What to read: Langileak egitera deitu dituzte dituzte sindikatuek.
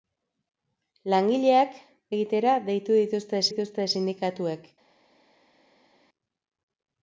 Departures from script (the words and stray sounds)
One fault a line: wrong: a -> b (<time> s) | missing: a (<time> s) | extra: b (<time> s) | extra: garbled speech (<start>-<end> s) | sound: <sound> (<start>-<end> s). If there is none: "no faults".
no faults